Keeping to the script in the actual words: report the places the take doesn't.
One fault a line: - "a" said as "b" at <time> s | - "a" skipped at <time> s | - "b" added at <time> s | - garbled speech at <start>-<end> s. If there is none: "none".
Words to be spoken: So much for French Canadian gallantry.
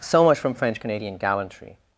- "for" said as "from" at 0.4 s